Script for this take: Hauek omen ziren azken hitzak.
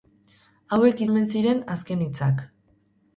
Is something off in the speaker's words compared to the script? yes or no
no